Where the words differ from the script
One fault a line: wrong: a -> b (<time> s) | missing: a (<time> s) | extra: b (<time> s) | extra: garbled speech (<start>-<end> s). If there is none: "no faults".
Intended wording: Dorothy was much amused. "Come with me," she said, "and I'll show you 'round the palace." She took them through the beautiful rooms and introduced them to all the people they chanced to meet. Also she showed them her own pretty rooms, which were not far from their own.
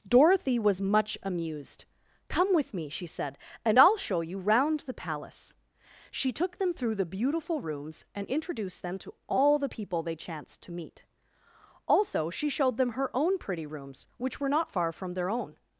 no faults